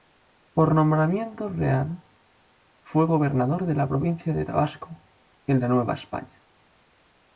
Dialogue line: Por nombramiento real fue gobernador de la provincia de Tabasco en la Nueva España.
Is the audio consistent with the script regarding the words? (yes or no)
yes